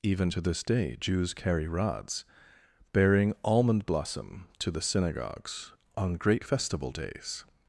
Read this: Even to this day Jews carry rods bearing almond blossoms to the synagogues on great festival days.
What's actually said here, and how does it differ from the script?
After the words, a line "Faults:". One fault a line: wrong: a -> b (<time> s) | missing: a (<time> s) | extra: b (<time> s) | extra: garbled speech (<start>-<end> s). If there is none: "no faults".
Even to this day Jews carry rods bearing almond blossom to the synagogues on great festival days.
Faults:
wrong: blossoms -> blossom (3.8 s)